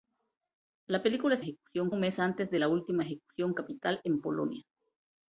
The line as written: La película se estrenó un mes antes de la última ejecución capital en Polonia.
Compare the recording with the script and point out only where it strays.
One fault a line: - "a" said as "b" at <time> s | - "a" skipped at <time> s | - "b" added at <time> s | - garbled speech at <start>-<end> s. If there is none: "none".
- "estrenó" said as "ejecución" at 1.4 s